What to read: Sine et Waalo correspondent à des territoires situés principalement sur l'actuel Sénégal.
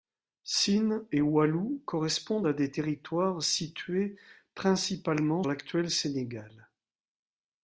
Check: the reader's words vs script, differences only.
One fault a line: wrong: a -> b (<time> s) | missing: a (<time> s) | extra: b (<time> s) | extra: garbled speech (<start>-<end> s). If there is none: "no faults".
missing: sur (5.4 s)